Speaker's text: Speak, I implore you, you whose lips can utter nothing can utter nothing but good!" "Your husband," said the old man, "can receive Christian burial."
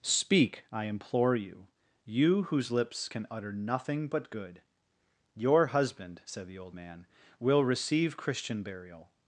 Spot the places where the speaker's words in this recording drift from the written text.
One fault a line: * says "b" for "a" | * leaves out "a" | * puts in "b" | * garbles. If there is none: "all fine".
* leaves out "can utter nothing"
* says "will" for "can"